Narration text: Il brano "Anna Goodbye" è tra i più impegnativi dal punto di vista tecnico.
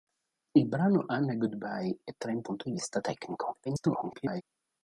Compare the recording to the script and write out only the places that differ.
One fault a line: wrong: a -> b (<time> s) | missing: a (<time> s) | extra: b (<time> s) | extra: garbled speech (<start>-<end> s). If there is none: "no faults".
missing: più impegnativi dal (2.4 s)
extra: garbled speech (3.6-4.4 s)